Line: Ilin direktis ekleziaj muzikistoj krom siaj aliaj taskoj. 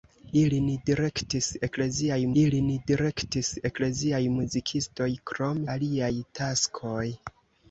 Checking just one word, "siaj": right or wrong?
wrong